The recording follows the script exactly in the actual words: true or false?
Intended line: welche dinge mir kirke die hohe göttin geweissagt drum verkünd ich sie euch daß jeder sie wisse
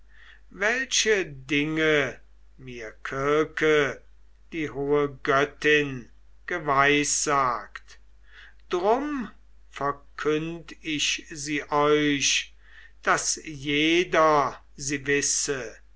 true